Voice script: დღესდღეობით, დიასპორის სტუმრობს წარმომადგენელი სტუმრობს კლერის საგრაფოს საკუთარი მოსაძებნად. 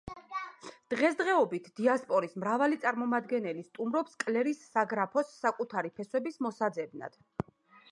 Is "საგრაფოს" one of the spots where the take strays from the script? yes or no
no